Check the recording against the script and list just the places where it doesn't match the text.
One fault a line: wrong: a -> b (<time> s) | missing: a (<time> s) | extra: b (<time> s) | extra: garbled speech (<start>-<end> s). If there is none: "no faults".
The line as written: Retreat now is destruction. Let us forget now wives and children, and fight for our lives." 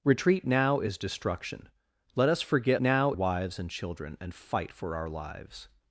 no faults